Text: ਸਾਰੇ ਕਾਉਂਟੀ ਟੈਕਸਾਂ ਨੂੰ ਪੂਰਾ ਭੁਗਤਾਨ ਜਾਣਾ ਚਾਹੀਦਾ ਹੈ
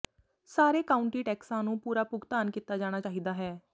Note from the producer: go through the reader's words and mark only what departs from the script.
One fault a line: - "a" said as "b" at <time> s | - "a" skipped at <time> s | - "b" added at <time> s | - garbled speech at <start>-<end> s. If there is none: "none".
- "ਕੀਤਾ" added at 2.5 s